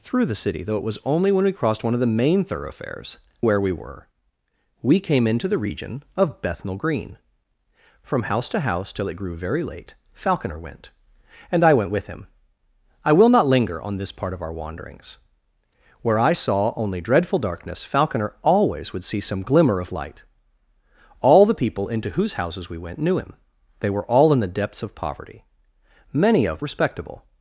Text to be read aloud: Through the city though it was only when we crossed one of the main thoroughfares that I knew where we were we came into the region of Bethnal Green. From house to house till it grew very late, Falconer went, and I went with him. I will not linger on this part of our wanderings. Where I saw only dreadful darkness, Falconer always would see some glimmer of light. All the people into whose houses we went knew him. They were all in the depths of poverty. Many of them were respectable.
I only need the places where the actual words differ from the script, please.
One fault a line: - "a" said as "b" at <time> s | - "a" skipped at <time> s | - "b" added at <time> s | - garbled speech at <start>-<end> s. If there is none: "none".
- "that I knew" skipped at 3.2 s
- "them were" skipped at 26.6 s